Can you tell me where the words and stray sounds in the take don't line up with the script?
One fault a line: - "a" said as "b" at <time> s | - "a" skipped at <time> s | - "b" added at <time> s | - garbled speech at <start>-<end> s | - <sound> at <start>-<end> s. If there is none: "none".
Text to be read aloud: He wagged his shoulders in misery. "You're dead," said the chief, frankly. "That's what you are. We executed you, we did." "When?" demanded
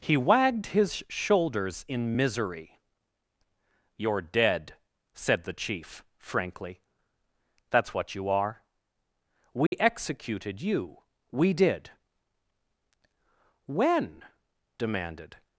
- dropout at 9.7-9.7 s